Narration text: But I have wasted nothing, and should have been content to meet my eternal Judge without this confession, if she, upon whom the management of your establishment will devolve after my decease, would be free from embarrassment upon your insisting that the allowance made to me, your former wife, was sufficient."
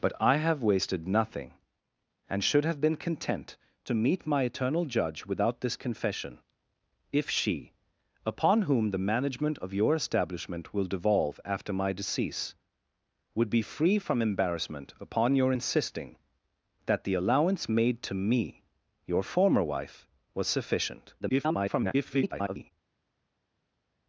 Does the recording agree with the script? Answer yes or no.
no